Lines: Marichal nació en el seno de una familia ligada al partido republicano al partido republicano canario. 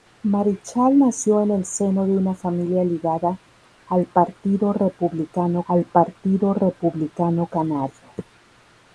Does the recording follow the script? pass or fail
pass